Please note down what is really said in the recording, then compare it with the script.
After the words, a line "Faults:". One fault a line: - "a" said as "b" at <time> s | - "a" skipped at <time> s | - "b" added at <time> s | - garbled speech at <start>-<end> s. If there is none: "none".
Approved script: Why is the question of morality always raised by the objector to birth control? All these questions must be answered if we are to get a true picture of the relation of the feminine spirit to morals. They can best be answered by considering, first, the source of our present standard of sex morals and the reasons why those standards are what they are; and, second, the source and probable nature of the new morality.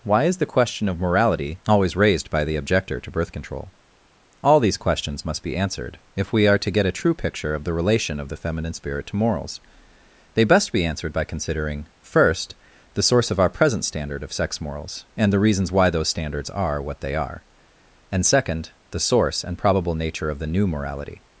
Why is the question of morality always raised by the objector to birth control? All these questions must be answered if we are to get a true picture of the relation of the feminine spirit to morals. They best be answered by considering, first, the source of our present standard of sex morals and the reasons why those standards are what they are; and, second, the source and probable nature of the new morality.
Faults:
- "can" skipped at 10.4 s